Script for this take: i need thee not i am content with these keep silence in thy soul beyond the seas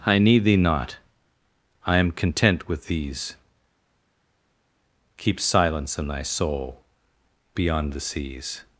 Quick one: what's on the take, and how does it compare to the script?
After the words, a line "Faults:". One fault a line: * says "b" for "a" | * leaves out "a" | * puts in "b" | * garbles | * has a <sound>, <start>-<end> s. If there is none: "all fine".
i need thee not i am content with these keep silence in thy soul beyond the seas
Faults:
all fine